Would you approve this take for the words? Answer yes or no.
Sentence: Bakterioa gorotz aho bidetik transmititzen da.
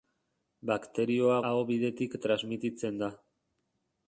no